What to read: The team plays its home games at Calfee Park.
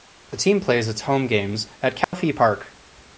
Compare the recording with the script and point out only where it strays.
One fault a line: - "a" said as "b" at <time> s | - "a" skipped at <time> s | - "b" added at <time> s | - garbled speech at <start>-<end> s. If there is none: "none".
none